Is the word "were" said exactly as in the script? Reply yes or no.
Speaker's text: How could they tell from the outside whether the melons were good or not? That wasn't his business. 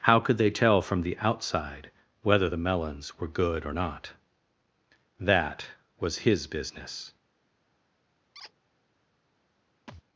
yes